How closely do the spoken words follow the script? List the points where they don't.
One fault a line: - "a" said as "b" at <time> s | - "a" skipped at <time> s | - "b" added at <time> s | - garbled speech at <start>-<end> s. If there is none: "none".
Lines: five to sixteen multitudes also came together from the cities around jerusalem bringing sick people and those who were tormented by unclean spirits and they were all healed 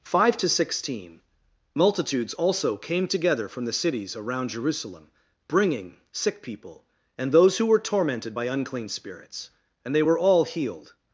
none